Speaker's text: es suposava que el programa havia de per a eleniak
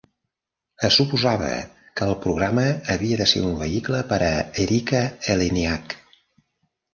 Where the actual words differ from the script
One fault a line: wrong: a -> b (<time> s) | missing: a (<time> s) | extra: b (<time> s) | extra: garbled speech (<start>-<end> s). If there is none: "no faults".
extra: ser un vehicle (3.3 s)
extra: erika (4.6 s)